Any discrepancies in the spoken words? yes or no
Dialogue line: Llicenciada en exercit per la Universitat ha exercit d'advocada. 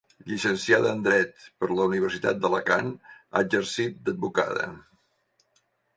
yes